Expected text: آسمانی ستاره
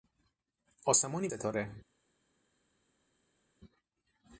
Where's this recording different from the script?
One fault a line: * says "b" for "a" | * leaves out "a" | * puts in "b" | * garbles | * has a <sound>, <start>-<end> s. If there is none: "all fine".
all fine